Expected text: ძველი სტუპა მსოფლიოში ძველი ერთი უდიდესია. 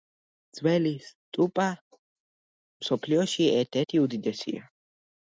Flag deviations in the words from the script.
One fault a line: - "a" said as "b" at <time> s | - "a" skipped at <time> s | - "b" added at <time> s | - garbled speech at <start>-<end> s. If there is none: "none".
- "ძველი" said as "ერთ" at 3.6 s